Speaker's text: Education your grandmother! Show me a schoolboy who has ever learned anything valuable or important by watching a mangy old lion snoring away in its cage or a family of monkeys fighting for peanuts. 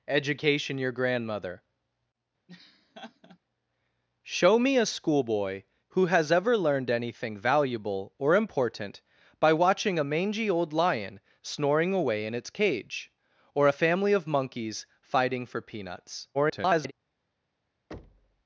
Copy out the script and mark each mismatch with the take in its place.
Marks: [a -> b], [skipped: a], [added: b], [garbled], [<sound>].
Education your grandmother! [laugh] Show me a schoolboy who has ever learned anything valuable or important by watching a mangy old lion snoring away in its cage or a family of monkeys fighting for peanuts. [garbled] [thud]